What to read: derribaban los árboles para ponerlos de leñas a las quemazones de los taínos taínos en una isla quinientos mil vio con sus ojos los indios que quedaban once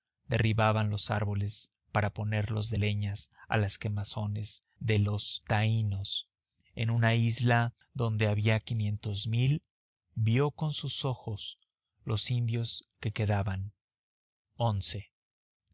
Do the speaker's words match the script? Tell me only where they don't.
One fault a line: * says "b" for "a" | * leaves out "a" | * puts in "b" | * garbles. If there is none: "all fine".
* leaves out "taínos"
* puts in "donde había"